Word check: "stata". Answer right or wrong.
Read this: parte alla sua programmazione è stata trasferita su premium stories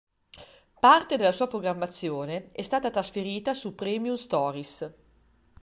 right